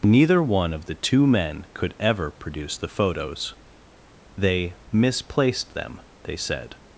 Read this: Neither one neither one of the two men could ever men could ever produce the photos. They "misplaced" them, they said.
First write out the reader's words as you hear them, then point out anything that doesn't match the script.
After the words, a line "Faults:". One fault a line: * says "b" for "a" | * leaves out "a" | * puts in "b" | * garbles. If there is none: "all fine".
Neither one of the two men could ever produce the photos. They "misplaced" them, they said.
Faults:
* leaves out "neither one"
* leaves out "men could ever"